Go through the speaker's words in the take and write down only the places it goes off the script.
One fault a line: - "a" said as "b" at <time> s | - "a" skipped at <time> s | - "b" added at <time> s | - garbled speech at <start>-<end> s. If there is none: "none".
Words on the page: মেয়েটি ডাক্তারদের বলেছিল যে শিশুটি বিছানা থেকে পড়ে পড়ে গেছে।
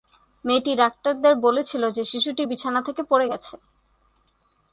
- "পড়ে" skipped at 3.3 s